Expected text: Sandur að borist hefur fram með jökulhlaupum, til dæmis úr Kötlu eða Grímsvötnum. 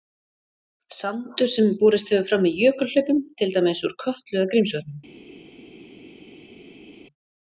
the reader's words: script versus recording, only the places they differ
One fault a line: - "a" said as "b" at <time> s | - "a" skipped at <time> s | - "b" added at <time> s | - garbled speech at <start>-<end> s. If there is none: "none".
- "að" said as "sem" at 1.6 s